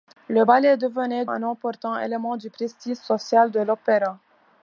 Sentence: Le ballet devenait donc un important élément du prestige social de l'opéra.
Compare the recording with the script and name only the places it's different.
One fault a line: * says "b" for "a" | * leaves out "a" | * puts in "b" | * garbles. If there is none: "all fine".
* leaves out "donc"